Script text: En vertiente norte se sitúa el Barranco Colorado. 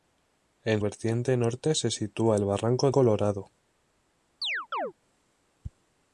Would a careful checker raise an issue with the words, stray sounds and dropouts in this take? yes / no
yes